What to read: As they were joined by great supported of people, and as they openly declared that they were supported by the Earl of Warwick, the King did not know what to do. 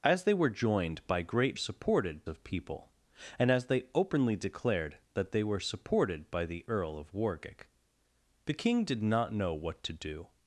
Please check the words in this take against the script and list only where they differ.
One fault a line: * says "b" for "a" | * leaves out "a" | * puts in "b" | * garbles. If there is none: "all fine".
all fine